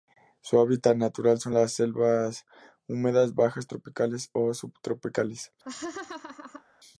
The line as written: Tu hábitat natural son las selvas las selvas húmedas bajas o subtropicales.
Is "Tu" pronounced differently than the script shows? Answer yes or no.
yes